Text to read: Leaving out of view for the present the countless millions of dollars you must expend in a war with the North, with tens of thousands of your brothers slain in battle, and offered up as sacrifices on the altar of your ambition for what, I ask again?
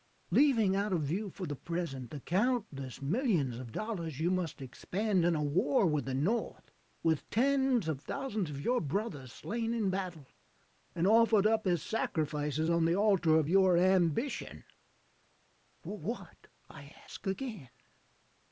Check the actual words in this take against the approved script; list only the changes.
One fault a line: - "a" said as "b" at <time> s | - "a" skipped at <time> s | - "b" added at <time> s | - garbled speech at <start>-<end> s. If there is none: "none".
none